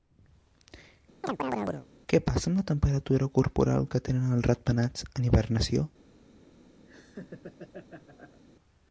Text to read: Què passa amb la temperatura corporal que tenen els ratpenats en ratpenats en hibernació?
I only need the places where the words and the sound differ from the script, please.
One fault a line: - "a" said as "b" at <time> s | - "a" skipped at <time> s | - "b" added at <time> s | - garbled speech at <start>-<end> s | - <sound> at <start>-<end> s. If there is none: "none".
- chirp at 1.2-1.9 s
- "ratpenats en" skipped at 5.3 s
- laugh at 6.8-8.4 s